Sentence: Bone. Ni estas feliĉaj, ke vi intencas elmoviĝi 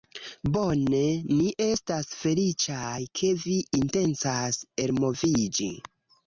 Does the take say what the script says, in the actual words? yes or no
yes